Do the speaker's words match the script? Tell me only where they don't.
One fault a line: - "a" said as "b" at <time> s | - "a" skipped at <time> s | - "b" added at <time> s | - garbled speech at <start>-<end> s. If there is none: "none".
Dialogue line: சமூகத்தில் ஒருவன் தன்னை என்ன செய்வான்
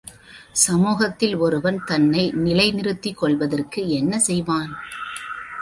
- "நிலை நிறுத்திக் கொள்வதற்கு" added at 2.4 s